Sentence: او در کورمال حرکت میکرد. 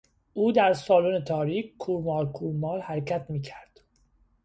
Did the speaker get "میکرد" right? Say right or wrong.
right